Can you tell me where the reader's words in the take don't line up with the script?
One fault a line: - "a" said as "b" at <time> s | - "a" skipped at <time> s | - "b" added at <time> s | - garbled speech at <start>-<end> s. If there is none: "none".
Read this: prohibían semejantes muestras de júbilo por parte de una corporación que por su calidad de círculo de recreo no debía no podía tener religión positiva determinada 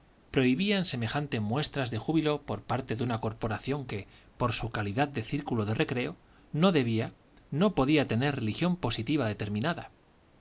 none